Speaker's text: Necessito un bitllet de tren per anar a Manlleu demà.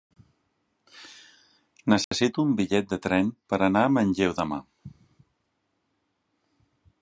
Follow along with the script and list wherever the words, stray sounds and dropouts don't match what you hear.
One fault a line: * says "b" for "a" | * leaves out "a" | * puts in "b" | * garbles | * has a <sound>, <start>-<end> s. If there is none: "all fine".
* has a dropout, 2.0-2.1 s